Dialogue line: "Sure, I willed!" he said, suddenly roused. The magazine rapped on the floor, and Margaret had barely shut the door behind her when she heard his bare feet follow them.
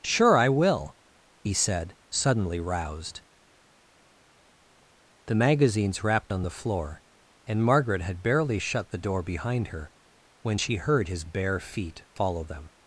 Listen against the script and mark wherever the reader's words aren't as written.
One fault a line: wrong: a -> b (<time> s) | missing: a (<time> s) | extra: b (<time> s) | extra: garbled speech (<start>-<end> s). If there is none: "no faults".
wrong: willed -> will (0.5 s)
wrong: magazine -> magazines (5.3 s)